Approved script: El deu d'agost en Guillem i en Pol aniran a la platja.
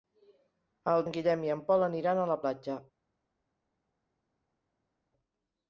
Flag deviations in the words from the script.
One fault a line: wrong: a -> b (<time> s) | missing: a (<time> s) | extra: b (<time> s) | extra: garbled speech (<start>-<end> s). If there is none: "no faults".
missing: deu d'agost (1.0 s)